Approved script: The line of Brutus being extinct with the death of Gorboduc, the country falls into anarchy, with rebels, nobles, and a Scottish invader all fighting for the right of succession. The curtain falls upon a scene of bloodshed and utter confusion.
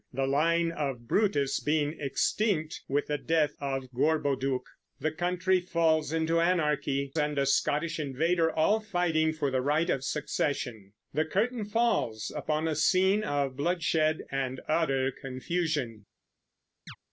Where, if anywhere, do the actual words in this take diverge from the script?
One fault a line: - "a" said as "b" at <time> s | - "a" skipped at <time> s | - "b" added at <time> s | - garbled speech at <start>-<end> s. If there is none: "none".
- "with rebels nobles" skipped at 7.1 s